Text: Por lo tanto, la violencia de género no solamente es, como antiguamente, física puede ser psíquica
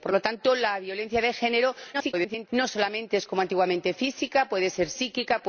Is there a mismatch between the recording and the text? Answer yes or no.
yes